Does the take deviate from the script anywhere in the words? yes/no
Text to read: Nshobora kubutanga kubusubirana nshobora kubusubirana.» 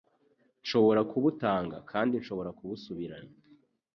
yes